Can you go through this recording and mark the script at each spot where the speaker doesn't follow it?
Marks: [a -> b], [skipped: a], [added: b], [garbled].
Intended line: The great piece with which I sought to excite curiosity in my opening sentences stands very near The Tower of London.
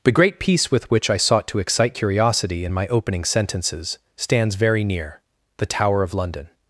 The great piece with which I sought to excite curiosity in my opening sentences stands very near The Tower of London.